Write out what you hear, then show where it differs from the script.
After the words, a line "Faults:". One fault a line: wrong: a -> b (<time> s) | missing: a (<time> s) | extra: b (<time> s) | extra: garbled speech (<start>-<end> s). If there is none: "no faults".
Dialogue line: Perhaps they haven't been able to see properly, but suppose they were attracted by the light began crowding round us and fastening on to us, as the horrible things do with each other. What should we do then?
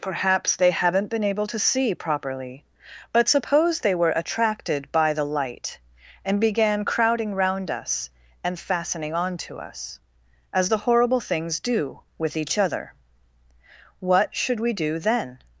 Perhaps they haven't been able to see properly, but suppose they were attracted by the light and began crowding round us and fastening on to us, as the horrible things do with each other. What should we do then?
Faults:
extra: and (6.2 s)